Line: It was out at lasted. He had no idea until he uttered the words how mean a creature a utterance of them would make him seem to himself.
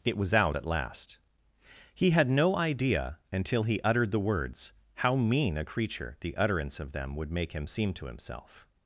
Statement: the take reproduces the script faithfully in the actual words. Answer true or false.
false